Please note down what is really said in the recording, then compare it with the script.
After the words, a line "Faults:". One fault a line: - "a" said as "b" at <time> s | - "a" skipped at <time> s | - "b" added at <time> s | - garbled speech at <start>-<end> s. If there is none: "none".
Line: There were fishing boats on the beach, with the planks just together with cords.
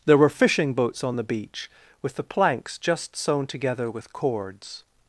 There were fishing boats on the beach, with the planks just sewn together with cords.
Faults:
- "sewn" added at 3.2 s